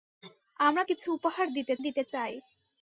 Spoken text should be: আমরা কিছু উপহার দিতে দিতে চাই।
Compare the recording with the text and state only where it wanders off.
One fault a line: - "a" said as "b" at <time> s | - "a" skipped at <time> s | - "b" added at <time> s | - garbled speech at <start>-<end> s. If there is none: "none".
none